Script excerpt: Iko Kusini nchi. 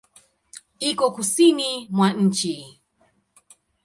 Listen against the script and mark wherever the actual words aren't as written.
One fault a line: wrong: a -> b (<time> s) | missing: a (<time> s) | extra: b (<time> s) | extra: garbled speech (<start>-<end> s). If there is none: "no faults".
extra: mwa (1.9 s)